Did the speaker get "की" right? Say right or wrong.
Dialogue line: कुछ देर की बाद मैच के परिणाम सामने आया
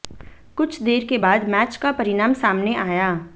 wrong